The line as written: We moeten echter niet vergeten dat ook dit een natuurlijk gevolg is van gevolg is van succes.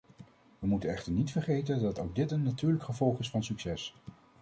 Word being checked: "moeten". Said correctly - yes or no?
yes